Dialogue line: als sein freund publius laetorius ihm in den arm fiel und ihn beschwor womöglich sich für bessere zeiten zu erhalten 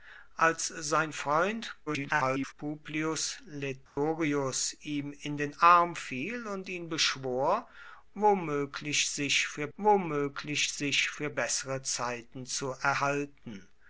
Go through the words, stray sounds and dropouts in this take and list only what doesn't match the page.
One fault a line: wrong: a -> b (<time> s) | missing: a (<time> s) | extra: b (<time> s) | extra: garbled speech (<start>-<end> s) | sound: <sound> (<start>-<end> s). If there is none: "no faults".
extra: garbled speech (1.9-2.5 s)
sound: dropout (3.9-4.0 s)
extra: womöglich sich für (9.8 s)